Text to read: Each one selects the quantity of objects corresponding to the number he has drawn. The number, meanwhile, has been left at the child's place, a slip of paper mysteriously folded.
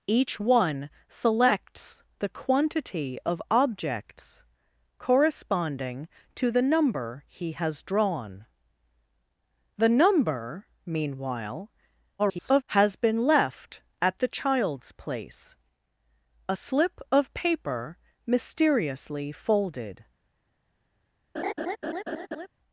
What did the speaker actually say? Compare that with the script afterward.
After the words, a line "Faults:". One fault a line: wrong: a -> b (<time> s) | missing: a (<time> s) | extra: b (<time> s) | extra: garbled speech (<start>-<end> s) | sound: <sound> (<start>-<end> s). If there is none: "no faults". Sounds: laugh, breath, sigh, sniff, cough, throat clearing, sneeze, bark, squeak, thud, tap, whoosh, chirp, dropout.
Each one selects the quantity of objects corresponding to the number he has drawn. The number, meanwhile, [garbled] has been left at the child's place, a slip of paper mysteriously folded.
Faults:
extra: garbled speech (12.2-12.6 s)
sound: laugh (21.3-22.5 s)